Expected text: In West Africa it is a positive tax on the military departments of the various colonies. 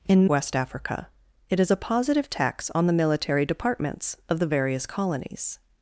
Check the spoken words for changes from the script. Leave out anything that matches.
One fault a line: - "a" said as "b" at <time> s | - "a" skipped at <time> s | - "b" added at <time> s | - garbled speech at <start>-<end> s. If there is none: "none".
none